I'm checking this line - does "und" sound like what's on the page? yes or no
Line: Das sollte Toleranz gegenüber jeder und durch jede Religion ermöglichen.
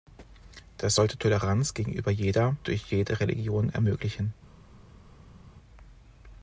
no